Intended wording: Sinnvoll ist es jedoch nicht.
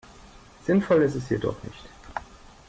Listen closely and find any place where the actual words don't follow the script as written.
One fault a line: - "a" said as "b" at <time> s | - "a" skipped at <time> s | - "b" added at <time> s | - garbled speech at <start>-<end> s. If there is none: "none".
none